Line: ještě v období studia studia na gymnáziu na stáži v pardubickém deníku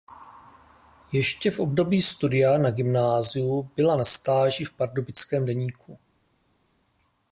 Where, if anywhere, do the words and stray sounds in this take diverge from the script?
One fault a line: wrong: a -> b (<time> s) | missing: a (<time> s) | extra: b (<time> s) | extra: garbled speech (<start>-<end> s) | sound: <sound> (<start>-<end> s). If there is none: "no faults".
missing: studia (2.6 s)
extra: byla (3.8 s)